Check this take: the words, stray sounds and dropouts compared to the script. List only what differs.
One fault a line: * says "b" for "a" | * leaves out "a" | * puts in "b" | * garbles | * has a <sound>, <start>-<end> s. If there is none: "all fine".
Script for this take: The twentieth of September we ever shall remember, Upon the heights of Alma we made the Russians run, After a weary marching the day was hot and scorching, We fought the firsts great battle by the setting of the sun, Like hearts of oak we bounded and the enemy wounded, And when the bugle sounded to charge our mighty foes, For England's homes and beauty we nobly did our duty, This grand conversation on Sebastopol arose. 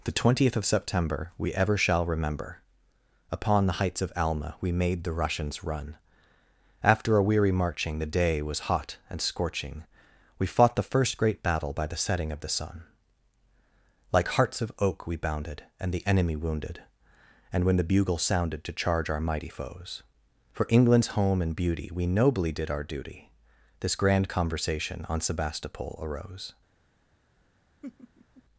* says "first" for "firsts"
* says "home" for "homes"
* has a laugh, 27.8-28.4 s